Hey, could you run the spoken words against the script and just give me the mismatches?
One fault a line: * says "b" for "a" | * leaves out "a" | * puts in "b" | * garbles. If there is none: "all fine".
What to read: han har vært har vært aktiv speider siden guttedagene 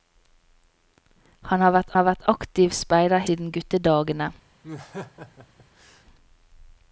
all fine